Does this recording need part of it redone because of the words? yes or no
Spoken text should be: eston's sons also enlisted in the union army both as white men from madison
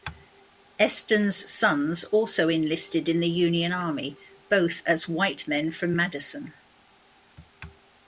no